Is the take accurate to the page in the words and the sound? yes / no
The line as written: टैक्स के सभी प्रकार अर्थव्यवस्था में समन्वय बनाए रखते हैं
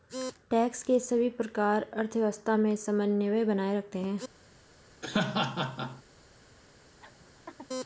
no